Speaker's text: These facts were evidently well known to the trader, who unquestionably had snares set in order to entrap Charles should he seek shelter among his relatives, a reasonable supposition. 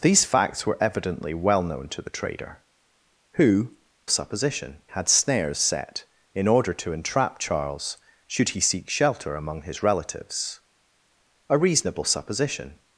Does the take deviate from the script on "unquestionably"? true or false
true